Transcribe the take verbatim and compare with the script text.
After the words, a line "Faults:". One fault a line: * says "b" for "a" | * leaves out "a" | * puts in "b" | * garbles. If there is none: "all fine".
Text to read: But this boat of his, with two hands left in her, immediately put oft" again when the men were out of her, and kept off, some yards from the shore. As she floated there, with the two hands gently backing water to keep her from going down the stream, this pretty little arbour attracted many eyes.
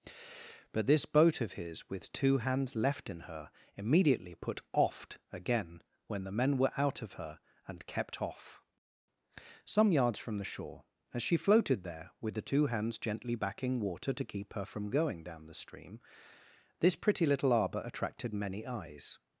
But this boat of his, with two hands left in her, immediately put oft" again when the men were out of her, and kept off, some yards from the shore. As she floated there, with the two hands gently backing water to keep her from going down the stream, this pretty little arbour attracted many eyes.
Faults:
all fine